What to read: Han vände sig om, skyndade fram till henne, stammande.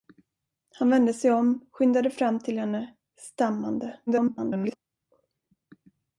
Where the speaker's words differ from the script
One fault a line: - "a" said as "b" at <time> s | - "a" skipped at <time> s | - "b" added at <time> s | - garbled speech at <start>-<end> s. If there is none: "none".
- garbled speech at 4.1-4.8 s